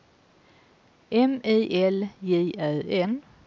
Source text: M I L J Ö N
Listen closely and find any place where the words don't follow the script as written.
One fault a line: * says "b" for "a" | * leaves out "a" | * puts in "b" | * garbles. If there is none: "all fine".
all fine